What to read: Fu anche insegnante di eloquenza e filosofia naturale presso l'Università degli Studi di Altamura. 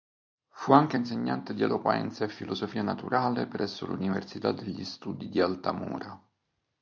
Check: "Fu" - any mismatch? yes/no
no